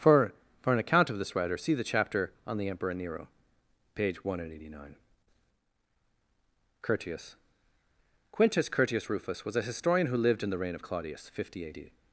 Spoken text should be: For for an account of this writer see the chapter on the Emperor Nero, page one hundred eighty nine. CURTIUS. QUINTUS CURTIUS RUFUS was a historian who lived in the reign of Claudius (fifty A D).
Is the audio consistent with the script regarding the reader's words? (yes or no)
yes